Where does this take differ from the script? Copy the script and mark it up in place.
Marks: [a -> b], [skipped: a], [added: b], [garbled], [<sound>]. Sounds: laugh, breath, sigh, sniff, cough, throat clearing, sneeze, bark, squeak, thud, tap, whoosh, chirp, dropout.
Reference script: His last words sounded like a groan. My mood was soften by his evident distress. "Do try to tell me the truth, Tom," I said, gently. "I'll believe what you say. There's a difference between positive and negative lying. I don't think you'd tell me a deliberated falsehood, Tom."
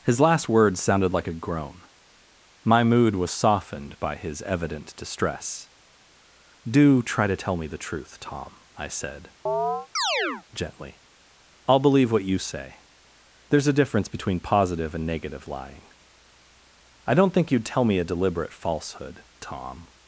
His last words sounded like a groan. My mood was [soften -> softened] by his evident distress. "Do try to tell me the truth, Tom," I said, [chirp] gently. "I'll believe what you say. There's a difference between positive and negative lying. I don't think you'd tell me a [deliberated -> deliberate] falsehood, Tom."